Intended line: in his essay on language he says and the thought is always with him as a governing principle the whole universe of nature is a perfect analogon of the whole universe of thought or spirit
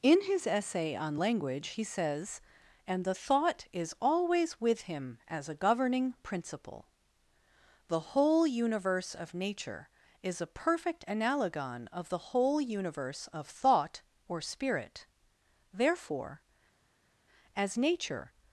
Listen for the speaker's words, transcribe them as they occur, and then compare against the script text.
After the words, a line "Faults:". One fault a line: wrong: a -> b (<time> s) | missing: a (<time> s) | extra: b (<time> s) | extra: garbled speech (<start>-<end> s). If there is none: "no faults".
in his essay on language he says and the thought is always with him as a governing principle the whole universe of nature is a perfect analogon of the whole universe of thought or spirit therefore as nature
Faults:
extra: therefore as nature (15.7 s)